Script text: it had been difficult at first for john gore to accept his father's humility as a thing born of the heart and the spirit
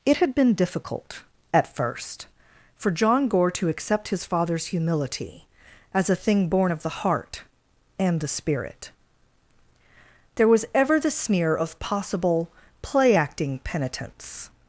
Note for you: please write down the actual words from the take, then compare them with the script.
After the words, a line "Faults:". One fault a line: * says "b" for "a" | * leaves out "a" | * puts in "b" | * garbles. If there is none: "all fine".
it had been difficult at first for john gore to accept his father's humility as a thing born of the heart and the spirit there was ever the sneer of possible play acting penitence
Faults:
* puts in "there was ever the sneer of possible play acting penitence"